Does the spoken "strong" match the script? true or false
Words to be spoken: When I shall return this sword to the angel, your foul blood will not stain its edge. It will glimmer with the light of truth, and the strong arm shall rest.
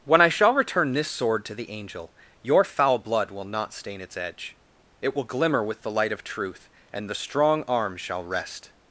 true